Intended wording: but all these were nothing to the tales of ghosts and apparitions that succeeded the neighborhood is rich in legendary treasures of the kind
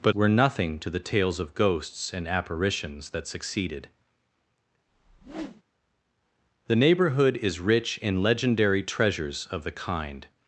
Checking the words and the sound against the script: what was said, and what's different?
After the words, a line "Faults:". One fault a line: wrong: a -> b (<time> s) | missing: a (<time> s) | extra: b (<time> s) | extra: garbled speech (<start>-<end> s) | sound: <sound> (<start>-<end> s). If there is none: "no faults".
but were nothing to the tales of ghosts and apparitions that succeeded the neighborhood is rich in legendary treasures of the kind
Faults:
missing: all these (0.1 s)
sound: whoosh (4.9-5.6 s)